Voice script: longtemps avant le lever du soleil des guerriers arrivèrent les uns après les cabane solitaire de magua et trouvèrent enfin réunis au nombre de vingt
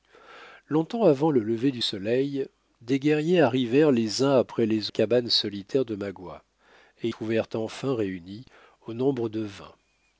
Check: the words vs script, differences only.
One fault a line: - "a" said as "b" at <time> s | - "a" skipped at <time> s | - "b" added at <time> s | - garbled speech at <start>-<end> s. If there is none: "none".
none